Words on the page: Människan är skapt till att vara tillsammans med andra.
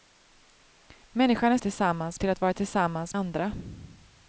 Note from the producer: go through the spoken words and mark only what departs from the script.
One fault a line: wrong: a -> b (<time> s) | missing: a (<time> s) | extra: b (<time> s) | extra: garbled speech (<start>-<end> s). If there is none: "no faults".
wrong: skapt -> tillsammans (1.6 s)
missing: med (3.2 s)